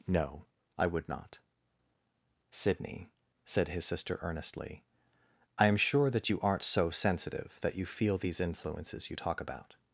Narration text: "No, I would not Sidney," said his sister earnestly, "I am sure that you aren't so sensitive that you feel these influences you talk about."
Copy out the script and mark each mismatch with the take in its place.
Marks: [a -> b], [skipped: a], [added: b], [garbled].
"No, I would not Sidney," said his sister earnestly, "I am sure that you aren't so sensitive that you feel these influences you talk about."